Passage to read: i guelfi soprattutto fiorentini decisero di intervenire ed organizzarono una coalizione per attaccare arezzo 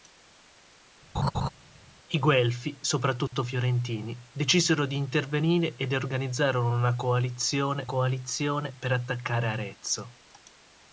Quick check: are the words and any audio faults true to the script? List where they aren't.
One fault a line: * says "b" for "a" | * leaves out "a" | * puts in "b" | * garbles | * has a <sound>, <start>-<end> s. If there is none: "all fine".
* has a laugh, 1.1-1.5 s
* has a dropout, 3.3-3.3 s
* puts in "coalizione"